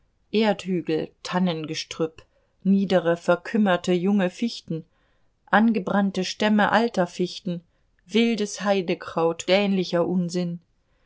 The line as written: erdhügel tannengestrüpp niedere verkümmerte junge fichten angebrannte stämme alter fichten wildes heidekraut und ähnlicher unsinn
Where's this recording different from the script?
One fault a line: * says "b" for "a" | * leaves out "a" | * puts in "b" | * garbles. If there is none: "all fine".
* leaves out "und"